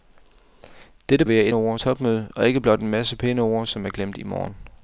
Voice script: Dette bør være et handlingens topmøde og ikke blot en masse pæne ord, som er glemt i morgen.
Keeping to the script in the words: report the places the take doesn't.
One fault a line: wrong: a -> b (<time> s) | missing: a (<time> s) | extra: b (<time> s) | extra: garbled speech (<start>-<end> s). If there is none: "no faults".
missing: bør (1.2 s)
wrong: handlingens -> ord (1.5 s)